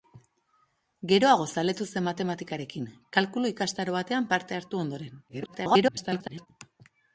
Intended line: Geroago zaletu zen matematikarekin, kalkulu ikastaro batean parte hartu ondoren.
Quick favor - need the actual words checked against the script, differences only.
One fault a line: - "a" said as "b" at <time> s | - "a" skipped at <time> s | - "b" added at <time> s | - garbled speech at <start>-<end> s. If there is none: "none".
- garbled speech at 5.3-6.5 s